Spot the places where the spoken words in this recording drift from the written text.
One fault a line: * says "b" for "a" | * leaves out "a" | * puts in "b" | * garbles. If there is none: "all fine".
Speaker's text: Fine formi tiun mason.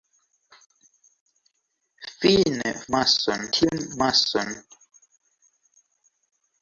* says "mason" for "formi"